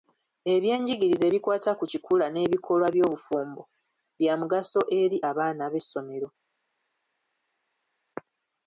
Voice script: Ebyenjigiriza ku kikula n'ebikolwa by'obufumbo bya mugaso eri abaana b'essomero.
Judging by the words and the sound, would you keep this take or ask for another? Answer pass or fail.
fail